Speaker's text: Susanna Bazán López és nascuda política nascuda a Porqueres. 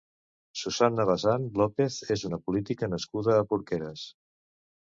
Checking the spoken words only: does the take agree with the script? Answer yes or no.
no